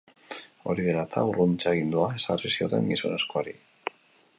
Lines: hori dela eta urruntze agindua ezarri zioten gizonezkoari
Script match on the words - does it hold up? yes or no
yes